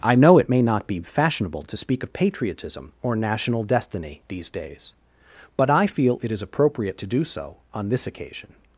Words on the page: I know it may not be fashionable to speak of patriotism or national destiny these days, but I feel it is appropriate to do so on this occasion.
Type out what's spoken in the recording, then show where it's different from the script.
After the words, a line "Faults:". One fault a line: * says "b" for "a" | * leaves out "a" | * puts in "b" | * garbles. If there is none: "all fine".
I know it may not be fashionable to speak of patriotism or national destiny these days, but I feel it is appropriate to do so on this occasion.
Faults:
all fine